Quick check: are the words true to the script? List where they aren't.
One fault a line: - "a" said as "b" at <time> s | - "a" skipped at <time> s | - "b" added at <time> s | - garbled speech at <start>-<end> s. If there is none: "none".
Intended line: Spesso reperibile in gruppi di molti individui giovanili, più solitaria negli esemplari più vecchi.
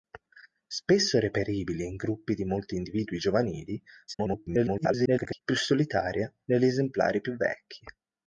- garbled speech at 4.1-5.4 s